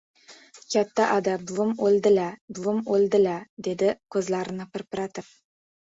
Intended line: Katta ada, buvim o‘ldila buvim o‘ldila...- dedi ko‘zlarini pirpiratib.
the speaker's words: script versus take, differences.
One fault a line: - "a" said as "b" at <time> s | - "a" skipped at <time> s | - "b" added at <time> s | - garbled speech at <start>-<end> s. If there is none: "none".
none